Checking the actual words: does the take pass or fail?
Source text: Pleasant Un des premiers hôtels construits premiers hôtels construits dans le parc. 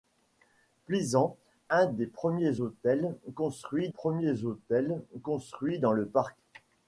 pass